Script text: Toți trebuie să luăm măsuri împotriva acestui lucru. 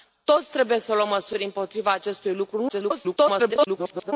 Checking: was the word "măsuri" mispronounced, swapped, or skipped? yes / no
no